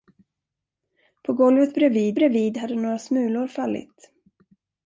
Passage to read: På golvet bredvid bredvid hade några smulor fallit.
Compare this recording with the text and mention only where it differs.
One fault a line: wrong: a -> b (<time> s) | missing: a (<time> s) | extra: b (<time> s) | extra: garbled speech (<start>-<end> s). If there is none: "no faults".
no faults